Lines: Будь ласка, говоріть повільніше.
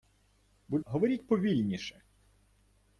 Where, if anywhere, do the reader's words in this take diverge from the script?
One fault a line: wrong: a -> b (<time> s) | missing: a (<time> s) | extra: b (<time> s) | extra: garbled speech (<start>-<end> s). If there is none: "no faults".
missing: ласка (0.8 s)